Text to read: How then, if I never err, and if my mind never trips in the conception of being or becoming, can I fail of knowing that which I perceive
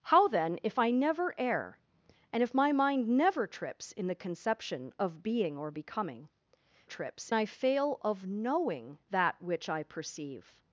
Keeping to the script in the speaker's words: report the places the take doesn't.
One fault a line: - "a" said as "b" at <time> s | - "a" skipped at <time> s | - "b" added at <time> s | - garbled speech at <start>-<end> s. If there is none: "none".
- "can" said as "trips" at 6.8 s